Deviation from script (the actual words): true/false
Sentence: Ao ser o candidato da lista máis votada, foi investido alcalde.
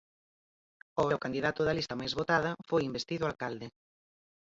true